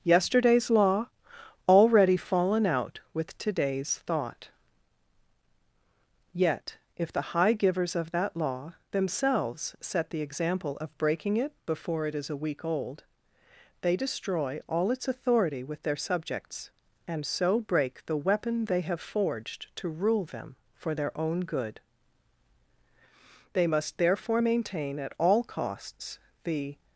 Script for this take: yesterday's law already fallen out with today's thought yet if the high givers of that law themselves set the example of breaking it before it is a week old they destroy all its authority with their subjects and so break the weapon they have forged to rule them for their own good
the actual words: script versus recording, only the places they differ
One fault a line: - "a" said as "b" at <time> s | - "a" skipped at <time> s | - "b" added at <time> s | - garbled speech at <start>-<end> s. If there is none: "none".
- "they must therefore maintain at all costs the" added at 23.5 s